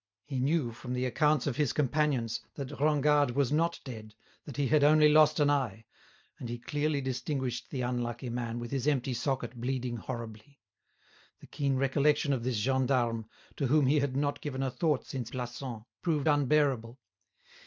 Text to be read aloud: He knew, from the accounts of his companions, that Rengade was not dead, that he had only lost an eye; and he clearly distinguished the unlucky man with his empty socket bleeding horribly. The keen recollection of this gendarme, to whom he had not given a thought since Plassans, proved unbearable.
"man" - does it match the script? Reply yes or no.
yes